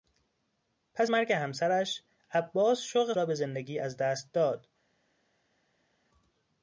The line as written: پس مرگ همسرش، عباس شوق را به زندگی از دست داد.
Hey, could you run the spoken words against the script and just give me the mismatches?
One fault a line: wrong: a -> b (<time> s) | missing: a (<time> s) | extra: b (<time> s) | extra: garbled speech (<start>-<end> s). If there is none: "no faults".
no faults